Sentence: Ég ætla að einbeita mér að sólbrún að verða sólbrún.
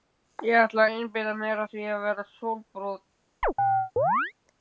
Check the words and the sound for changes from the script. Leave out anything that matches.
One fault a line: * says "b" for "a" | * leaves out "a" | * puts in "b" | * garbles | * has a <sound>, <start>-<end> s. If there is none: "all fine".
* says "því" for "sólbrún"
* has a chirp, 3.4-4.3 s